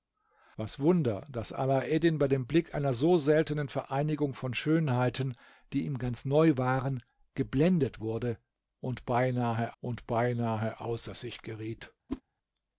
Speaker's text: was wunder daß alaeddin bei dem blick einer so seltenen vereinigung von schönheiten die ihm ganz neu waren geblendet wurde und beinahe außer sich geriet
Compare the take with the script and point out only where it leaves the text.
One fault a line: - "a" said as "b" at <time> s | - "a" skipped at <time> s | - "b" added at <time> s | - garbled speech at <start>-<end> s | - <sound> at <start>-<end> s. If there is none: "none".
- "und beinahe" added at 9.8 s
- whoosh at 12.1-12.2 s